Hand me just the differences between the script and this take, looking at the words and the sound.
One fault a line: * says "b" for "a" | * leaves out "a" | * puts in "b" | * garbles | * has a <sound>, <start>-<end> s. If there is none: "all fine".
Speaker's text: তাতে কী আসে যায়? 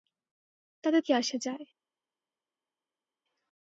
all fine